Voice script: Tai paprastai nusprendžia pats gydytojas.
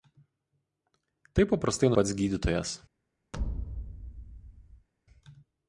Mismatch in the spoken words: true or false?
true